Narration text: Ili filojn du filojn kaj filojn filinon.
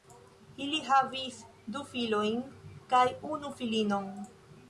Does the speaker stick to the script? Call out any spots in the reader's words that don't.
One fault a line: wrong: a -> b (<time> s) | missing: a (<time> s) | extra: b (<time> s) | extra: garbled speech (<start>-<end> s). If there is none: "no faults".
wrong: filojn -> havis (0.9 s)
wrong: filojn -> unu (3.4 s)